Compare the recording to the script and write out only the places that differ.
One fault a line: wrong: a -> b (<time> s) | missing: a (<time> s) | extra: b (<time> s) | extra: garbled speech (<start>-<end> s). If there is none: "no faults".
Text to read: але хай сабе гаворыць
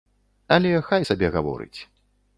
no faults